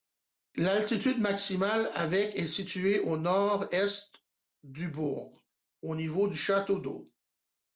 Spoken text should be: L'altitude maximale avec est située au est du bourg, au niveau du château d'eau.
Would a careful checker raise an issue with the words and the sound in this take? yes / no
yes